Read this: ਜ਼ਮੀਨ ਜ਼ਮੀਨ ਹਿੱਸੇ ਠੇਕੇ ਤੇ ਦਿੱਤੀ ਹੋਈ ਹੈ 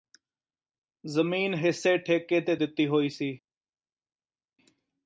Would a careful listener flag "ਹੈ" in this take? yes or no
yes